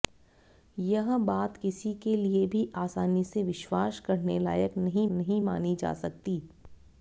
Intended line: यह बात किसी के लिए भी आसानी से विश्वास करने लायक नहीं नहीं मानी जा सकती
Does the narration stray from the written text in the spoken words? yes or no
no